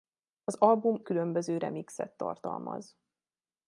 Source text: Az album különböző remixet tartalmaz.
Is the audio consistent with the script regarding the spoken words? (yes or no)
yes